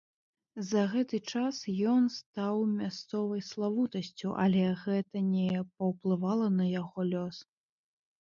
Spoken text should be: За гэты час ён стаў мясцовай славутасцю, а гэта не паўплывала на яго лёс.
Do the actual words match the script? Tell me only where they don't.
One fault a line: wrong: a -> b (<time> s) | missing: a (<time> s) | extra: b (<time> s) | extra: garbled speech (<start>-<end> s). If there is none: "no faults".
wrong: а -> але (4.5 s)